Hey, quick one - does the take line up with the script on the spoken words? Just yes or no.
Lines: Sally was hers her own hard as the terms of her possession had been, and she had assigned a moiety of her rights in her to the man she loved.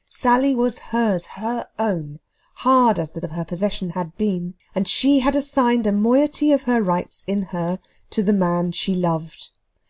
no